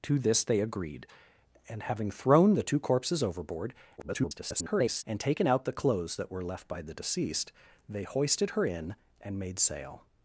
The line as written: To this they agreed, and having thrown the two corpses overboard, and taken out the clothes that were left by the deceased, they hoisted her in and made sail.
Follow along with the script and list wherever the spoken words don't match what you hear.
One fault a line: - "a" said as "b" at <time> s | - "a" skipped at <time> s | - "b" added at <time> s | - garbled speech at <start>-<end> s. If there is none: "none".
- garbled speech at 4.0-5.0 s